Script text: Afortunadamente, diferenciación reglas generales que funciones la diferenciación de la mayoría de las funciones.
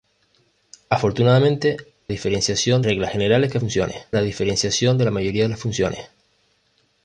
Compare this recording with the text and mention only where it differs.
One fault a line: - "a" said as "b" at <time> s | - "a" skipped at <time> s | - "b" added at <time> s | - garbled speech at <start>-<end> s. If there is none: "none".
none